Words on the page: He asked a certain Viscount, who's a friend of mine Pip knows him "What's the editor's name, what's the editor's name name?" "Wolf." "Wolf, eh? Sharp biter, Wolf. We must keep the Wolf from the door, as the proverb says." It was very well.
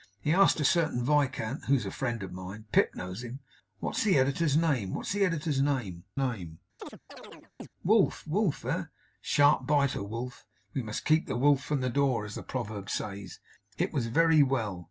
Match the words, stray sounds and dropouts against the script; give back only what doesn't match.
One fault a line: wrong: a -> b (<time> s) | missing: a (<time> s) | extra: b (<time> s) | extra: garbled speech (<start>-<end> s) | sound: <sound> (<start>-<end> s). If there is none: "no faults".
sound: chirp (6.8-7.7 s)